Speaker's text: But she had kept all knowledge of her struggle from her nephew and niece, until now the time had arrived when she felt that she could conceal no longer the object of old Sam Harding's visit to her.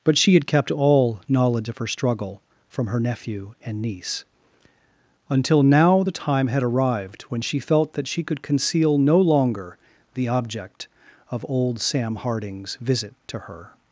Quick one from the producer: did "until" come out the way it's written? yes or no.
yes